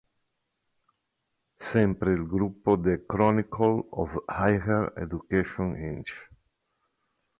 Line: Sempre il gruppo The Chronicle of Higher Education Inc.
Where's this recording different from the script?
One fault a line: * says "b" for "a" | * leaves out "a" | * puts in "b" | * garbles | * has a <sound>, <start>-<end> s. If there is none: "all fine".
all fine